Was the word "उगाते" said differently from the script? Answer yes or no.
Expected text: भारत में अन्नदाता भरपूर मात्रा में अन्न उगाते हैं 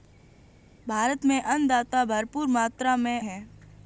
yes